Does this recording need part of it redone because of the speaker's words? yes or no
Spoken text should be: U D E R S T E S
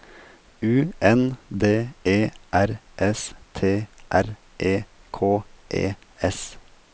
yes